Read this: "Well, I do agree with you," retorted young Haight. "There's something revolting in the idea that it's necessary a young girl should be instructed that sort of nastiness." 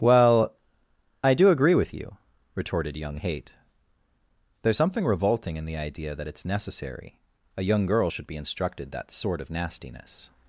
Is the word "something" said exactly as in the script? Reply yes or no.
yes